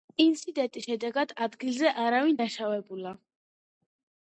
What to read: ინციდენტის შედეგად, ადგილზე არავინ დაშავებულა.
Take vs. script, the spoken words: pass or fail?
pass